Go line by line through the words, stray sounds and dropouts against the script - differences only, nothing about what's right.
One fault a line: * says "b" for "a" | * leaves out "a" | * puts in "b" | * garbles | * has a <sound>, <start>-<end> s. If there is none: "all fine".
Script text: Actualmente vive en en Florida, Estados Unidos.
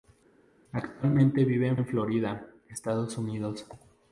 all fine